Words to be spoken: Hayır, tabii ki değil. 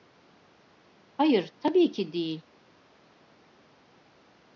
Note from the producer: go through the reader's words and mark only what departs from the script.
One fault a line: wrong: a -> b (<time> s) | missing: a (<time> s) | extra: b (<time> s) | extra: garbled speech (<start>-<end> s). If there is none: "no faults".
no faults